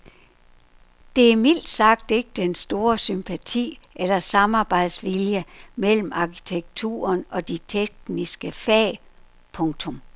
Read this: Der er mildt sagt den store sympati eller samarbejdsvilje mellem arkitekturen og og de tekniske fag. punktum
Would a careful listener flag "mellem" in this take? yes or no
no